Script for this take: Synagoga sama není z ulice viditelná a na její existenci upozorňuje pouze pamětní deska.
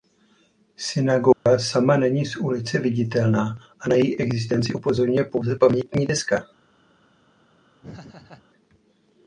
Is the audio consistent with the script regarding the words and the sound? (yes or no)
no